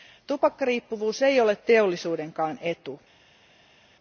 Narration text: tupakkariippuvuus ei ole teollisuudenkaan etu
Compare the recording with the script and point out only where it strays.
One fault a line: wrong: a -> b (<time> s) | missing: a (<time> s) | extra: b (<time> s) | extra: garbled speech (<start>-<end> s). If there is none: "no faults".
no faults